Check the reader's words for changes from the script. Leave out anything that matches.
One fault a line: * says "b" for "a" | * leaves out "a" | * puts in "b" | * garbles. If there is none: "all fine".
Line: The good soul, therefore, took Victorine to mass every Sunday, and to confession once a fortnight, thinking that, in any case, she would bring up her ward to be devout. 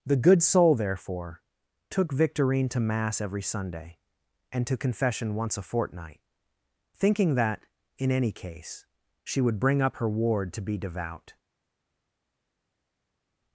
all fine